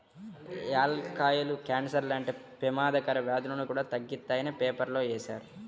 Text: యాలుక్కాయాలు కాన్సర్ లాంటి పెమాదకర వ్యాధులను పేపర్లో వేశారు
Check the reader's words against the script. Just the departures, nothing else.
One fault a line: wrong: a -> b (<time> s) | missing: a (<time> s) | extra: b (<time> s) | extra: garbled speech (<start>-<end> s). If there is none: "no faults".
extra: కూడా తగ్గిత్తాయని (3.6 s)